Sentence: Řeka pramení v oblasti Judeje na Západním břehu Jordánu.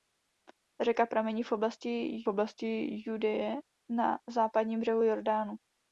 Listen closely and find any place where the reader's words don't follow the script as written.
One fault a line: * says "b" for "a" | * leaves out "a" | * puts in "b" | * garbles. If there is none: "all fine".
* puts in "oblasti"